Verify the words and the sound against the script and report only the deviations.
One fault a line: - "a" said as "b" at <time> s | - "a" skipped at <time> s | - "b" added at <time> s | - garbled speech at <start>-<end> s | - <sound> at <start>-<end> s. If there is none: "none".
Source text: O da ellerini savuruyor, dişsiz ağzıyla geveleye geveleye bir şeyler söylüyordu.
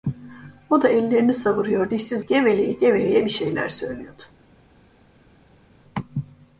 - "ağzıyla" skipped at 2.3 s